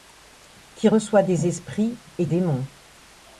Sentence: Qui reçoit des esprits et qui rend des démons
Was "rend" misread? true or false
true